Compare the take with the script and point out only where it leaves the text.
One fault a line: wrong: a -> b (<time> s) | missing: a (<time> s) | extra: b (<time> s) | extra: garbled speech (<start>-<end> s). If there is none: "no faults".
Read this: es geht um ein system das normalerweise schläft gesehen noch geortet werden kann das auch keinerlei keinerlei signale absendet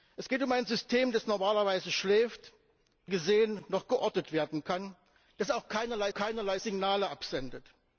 no faults